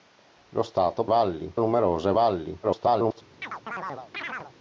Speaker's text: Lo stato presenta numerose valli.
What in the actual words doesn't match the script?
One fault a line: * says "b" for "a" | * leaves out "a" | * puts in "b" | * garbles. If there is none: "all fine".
* says "valli" for "presenta"
* garbles